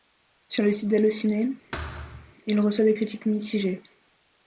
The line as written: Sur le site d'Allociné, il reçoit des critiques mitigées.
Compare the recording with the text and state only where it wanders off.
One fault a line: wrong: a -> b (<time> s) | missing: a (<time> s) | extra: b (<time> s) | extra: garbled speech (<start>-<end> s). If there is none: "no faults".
no faults